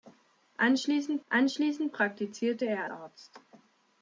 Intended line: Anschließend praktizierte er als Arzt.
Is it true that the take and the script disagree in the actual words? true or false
true